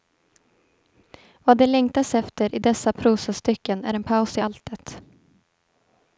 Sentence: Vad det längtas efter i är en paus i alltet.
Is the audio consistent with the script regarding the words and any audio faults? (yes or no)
no